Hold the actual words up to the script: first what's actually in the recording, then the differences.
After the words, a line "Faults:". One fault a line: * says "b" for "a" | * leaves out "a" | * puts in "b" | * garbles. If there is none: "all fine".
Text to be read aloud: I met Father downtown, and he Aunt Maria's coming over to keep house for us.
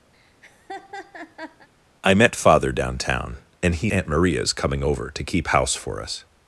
I met Father downtown, and he Aunt Maria's coming over to keep house for us.
Faults:
all fine